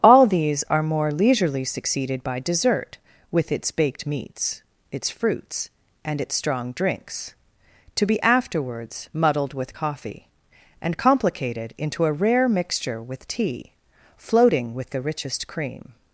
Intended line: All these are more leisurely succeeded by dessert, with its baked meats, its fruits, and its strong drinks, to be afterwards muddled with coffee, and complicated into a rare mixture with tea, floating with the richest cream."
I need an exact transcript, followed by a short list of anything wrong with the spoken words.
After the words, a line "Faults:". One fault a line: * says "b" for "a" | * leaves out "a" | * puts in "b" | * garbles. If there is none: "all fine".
All these are more leisurely succeeded by dessert, with its baked meats, its fruits, and its strong drinks, to be afterwards muddled with coffee, and complicated into a rare mixture with tea, floating with the richest cream."
Faults:
all fine